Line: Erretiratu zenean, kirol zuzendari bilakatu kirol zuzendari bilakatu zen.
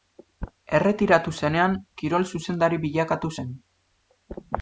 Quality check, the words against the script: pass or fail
fail